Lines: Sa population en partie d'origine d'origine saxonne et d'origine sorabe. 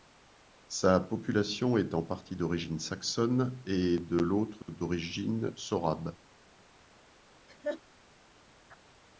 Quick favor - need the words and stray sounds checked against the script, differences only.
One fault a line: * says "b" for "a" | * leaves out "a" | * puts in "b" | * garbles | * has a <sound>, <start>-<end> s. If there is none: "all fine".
* puts in "est"
* leaves out "d'origine"
* puts in "de l'autre"
* has a laugh, 7.5-7.8 s